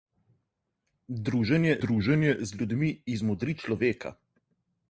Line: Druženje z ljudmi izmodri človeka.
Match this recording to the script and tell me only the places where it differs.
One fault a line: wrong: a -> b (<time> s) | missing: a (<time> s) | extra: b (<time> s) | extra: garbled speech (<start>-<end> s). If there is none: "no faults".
extra: druženje (1.8 s)